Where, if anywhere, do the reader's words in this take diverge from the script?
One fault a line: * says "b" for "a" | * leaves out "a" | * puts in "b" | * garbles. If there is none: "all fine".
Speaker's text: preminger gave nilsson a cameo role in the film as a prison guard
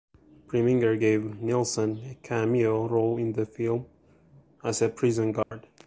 all fine